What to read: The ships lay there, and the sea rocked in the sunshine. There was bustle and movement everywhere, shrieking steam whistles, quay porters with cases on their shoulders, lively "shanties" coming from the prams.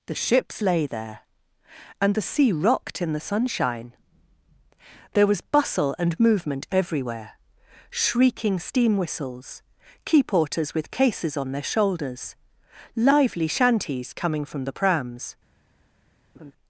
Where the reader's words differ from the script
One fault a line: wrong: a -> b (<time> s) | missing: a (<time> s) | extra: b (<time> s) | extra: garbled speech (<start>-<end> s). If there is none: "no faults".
no faults